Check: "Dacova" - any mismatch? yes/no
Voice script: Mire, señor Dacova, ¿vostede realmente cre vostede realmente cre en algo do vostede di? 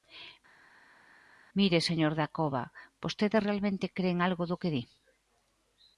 no